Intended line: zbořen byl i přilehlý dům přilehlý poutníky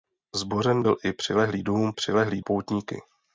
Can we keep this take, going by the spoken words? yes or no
yes